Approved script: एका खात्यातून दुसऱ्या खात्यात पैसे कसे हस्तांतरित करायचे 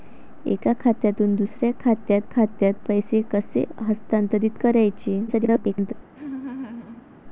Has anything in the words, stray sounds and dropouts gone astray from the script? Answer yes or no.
yes